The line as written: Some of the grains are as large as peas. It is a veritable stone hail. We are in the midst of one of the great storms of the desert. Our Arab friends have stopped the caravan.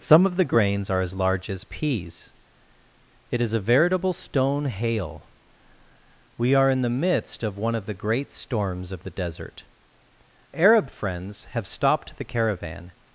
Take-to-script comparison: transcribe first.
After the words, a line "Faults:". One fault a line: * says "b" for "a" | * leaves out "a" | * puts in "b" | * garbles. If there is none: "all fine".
Some of the grains are as large as peas. It is a veritable stone hail. We are in the midst of one of the great storms of the desert. Arab friends have stopped the caravan.
Faults:
* leaves out "Our"